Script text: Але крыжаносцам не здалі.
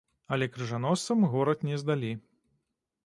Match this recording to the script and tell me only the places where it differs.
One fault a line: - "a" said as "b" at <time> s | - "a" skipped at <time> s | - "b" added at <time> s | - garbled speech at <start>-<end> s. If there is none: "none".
- "горад" added at 1.3 s